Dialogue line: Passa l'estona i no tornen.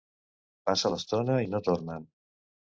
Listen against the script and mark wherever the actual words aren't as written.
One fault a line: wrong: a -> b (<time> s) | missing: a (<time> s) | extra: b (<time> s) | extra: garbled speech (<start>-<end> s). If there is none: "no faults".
no faults